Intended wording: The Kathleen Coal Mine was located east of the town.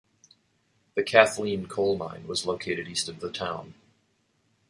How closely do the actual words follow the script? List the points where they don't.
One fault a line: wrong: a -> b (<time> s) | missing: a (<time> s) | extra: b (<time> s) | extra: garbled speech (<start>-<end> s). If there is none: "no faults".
no faults